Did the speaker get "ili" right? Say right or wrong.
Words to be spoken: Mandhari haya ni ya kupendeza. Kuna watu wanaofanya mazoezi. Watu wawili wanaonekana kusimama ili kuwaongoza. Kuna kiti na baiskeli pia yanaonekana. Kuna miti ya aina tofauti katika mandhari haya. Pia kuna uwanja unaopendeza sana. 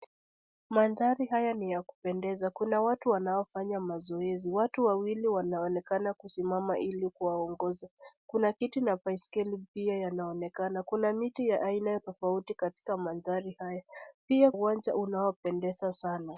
right